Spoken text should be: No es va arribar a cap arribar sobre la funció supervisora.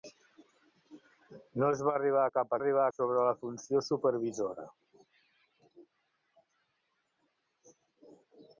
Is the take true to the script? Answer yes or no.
yes